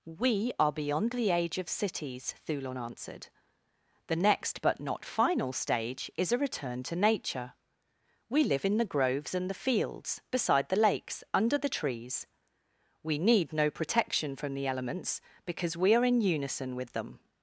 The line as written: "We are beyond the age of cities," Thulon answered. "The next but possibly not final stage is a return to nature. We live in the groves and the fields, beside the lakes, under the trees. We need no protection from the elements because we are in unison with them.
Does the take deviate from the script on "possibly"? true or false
true